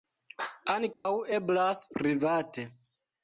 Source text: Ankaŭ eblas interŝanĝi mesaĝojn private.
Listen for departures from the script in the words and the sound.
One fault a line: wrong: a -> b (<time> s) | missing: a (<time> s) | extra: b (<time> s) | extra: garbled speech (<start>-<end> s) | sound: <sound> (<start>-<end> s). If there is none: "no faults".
sound: dropout (0.9-1.1 s)
missing: interŝanĝi mesaĝojn (1.8 s)